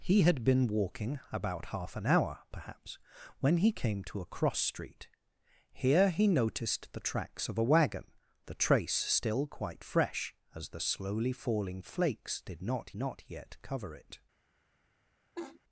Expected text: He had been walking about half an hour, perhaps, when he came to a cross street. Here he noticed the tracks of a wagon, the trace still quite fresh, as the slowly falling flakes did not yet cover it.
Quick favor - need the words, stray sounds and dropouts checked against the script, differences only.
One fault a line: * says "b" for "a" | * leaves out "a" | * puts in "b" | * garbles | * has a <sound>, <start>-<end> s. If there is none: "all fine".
* puts in "not"
* has a laugh, 15.4-15.6 s